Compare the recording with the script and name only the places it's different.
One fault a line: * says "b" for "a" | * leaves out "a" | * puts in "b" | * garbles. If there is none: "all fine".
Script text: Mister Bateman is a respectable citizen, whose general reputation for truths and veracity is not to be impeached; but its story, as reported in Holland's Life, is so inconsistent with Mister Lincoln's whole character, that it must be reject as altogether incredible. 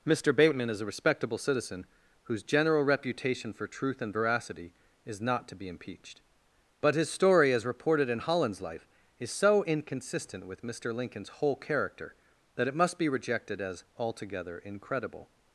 * says "truth" for "truths"
* says "his" for "its"
* says "rejected" for "reject"